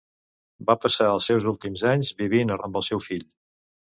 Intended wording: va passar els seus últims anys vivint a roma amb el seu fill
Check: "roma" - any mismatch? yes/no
yes